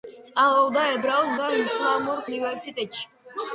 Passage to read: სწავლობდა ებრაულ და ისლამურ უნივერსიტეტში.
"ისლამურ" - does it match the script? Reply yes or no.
yes